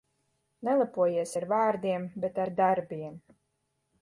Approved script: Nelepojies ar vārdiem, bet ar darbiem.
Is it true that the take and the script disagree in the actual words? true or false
false